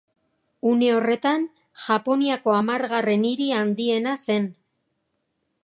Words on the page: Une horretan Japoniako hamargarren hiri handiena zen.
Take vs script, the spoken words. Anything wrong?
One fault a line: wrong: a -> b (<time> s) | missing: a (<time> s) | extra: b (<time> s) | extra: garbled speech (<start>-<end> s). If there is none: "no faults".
no faults